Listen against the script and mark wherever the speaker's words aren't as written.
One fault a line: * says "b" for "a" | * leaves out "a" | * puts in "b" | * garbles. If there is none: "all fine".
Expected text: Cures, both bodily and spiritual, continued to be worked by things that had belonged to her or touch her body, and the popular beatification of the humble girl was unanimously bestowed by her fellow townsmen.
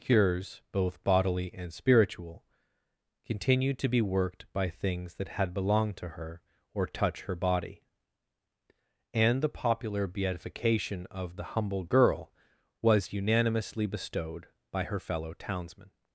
all fine